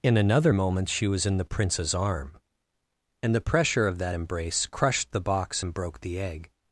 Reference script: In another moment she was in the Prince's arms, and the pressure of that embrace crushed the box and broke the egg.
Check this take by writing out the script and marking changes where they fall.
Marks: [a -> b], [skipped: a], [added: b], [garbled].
In another moment she was in the Prince's [arms, -> arm] and the pressure of that embrace crushed the box and broke the egg.